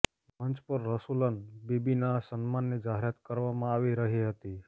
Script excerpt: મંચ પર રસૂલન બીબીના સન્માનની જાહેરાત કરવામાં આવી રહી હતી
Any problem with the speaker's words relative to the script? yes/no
no